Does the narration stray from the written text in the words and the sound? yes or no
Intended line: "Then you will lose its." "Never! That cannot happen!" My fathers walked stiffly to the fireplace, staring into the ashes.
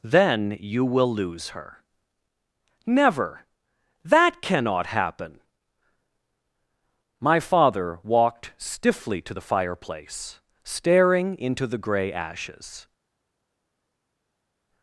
yes